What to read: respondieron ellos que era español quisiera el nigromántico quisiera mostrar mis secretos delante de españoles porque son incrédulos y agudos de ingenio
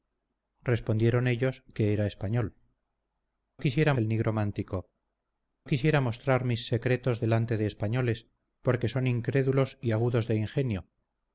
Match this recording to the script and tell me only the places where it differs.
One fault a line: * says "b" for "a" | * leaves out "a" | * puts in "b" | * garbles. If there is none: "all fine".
all fine